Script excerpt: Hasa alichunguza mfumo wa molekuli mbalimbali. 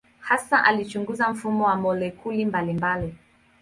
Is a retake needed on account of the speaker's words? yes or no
no